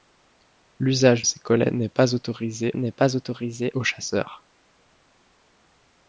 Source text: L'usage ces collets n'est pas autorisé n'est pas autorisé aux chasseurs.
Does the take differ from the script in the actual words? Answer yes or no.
no